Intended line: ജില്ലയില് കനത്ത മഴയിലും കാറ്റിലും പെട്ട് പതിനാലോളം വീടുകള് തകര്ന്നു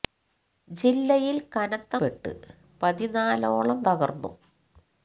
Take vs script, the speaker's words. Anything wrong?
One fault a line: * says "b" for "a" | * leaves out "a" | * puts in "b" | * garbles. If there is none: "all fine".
* leaves out "മഴയിലും കാറ്റിലും"
* leaves out "വീടുകള്"